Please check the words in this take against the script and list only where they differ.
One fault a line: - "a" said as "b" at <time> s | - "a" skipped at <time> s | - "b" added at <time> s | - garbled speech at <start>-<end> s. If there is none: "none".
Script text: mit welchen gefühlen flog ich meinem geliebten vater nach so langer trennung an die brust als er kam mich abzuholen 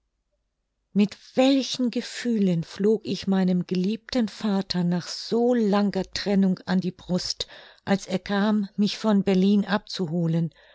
- "von berlin" added at 9.0 s